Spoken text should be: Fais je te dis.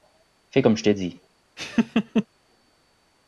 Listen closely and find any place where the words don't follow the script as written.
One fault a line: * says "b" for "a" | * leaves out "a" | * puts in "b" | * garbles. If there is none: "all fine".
* puts in "comme"